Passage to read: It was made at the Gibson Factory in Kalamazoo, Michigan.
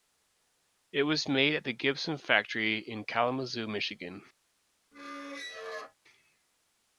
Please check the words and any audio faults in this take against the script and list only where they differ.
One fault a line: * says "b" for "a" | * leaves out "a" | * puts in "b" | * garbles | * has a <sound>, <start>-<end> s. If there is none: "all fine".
* has a squeak, 4.9-6.0 s